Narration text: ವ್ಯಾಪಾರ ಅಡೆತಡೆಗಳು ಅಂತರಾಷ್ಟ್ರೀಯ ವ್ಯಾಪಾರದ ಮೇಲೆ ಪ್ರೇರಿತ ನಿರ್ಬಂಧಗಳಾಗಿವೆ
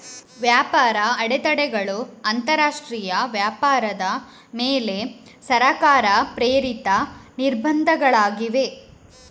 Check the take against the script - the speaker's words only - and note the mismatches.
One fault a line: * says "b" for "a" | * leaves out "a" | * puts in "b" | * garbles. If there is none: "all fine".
* puts in "ಸರ್ಕಾರ"